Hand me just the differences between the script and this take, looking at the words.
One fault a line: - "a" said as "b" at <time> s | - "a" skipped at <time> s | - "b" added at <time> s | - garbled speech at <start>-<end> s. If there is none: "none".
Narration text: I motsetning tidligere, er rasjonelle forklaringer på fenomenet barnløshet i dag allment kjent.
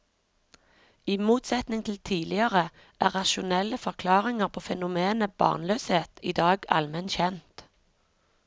- "til" added at 1.9 s